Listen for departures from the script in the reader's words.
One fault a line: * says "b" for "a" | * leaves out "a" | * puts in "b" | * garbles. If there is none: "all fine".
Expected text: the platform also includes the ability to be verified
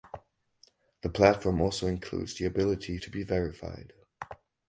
all fine